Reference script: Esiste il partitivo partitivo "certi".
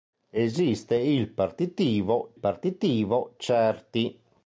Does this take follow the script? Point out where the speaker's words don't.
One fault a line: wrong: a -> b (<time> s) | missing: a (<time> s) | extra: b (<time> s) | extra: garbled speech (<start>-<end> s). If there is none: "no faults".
no faults